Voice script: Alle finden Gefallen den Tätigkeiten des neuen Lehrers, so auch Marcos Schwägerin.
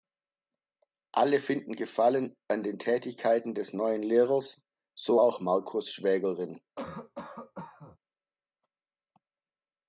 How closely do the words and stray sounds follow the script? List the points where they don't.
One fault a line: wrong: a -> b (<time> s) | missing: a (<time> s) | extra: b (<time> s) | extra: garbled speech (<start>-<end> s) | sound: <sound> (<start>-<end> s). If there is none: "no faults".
extra: an (2.5 s)
sound: cough (6.8-8.0 s)